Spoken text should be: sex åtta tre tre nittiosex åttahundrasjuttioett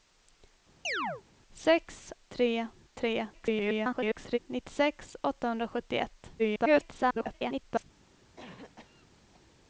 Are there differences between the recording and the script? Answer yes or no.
yes